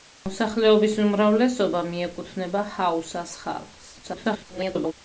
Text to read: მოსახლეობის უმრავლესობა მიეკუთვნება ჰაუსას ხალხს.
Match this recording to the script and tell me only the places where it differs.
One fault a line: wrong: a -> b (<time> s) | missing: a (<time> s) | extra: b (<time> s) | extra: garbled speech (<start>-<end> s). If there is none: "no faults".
extra: garbled speech (4.0-4.9 s)